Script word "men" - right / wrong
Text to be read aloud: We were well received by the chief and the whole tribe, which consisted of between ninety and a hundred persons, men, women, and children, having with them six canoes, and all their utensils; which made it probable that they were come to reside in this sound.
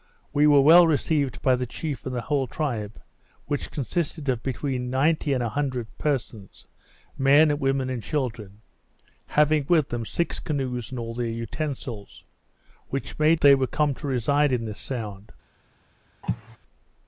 right